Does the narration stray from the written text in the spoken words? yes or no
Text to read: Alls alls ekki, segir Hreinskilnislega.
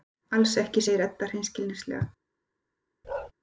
yes